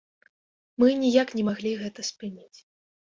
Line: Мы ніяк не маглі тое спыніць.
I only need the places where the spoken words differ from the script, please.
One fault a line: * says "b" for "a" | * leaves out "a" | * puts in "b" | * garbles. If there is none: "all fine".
* says "гэта" for "тое"